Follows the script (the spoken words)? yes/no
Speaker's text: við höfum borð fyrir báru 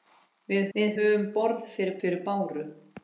no